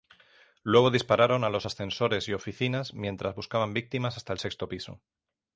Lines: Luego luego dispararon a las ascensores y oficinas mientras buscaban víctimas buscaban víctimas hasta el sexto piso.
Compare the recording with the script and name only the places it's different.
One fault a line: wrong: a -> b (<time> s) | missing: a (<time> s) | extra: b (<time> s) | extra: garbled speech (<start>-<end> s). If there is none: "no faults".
missing: luego (0.9 s)
wrong: las -> los (1.5 s)
missing: buscaban víctimas (4.1 s)